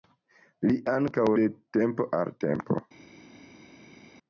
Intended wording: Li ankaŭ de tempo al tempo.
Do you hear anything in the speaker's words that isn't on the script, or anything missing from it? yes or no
no